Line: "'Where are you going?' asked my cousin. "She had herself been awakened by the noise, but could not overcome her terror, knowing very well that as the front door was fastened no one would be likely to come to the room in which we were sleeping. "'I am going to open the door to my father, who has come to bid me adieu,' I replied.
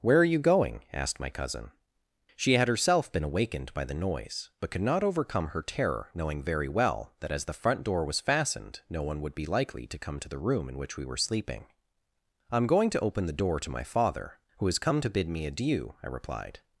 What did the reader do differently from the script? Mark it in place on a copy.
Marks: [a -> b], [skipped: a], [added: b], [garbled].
"'Where are you going?' asked my cousin. "She had herself been awakened by the noise, but could not overcome her terror, knowing very well that as the front door was fastened no one would be likely to come to the room in which we were sleeping. "'I am going to open the door to my father, who has come to bid me adieu,' I replied.